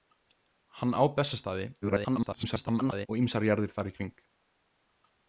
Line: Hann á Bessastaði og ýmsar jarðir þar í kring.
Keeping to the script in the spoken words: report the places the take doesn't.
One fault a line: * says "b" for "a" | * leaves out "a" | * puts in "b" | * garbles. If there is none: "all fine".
* garbles